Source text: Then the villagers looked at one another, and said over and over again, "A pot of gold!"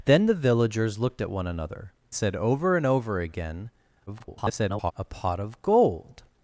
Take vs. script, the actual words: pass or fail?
fail